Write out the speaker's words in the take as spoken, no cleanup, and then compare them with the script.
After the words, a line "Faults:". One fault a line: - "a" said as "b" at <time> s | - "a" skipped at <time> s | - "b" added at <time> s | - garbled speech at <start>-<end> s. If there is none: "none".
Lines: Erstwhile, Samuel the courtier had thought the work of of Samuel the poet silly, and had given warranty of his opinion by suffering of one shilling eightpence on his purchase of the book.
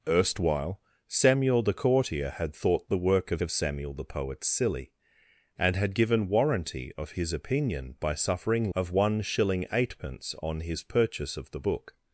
Erstwhile, Samuel the courtier had thought the work of of Samuel the poet silly, and had given warranty of his opinion by suffering of one shilling eightpence on his purchase of the book.
Faults:
none